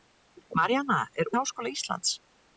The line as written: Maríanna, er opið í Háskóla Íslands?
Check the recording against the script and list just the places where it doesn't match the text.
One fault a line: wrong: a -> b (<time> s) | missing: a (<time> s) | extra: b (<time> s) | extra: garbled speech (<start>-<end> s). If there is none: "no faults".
missing: opið (1.3 s)